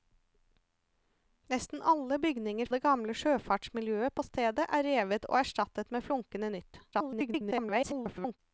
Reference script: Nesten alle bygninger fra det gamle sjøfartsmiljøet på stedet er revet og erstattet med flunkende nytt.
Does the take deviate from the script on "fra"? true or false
true